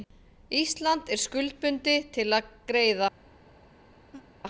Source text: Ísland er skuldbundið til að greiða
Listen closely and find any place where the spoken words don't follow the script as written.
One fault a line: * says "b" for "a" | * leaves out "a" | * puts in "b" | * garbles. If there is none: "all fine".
all fine